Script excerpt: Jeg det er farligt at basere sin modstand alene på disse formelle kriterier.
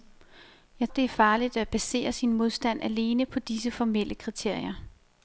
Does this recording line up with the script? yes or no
yes